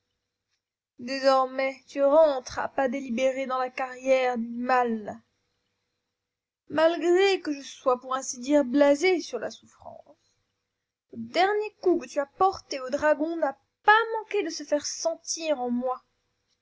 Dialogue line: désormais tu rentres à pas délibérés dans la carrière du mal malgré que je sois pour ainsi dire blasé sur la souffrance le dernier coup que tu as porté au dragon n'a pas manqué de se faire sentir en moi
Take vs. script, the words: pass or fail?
pass